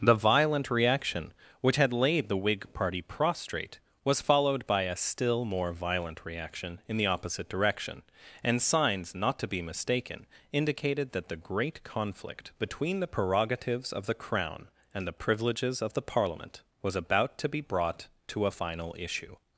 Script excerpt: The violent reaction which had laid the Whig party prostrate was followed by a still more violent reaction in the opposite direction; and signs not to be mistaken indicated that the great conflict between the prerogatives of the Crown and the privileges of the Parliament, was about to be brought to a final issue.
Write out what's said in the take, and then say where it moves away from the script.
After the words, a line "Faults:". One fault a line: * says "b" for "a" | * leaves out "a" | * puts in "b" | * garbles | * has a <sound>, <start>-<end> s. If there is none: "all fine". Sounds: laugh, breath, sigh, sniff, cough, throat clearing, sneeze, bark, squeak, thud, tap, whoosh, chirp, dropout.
The violent reaction which had laid the Whig party prostrate was followed by a still more violent reaction in the opposite direction; and signs not to be mistaken indicated that the great conflict between the prerogatives of the Crown and the privileges of the Parliament, was about to be brought to a final issue.
Faults:
all fine